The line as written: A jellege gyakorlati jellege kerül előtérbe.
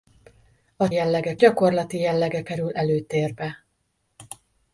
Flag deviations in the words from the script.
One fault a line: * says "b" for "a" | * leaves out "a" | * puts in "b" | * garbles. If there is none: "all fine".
all fine